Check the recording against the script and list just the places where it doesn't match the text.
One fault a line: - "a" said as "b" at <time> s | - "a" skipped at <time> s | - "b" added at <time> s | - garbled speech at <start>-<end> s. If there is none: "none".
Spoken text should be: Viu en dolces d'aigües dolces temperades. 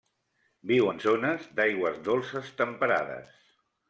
- "dolces" said as "zones" at 1.0 s